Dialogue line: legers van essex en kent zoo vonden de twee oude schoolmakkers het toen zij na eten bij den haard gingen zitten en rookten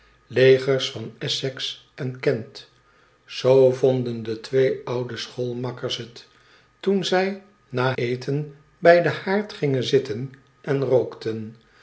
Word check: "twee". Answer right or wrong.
right